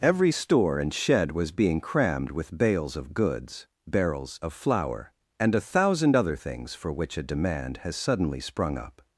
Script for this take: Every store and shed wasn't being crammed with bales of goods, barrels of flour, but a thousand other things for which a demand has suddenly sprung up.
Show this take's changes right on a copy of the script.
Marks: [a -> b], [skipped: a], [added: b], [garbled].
Every store and shed [wasn't -> was] being crammed with bales of goods, barrels of flour, [but -> and] a thousand other things for which a demand has suddenly sprung up.